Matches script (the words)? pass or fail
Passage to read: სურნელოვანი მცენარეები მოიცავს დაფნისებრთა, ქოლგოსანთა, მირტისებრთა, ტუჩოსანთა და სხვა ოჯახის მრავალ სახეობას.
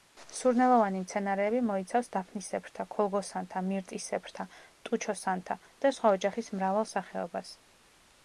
pass